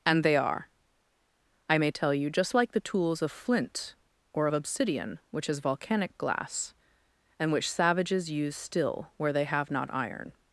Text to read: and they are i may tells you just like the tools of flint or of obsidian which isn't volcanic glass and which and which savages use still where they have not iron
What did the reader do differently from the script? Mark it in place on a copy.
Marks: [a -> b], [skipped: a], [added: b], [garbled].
and they are i may [tells -> tell] you just like the tools of flint or of obsidian which [isn't -> is] volcanic glass and which [skipped: and which] savages use still where they have not iron